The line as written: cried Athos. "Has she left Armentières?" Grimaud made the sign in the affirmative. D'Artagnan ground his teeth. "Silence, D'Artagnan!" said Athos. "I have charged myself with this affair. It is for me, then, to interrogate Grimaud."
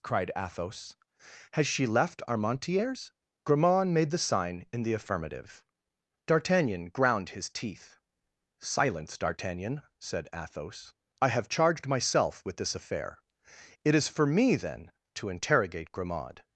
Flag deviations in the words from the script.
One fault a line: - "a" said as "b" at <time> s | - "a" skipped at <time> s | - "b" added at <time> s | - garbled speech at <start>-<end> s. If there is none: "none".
none